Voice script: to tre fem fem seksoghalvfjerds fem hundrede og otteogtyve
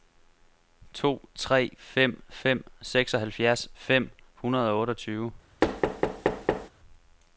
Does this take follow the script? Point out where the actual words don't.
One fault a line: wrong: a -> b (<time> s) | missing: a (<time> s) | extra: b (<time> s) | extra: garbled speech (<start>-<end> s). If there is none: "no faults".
no faults